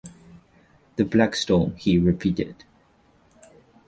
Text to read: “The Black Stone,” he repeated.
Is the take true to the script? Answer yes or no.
yes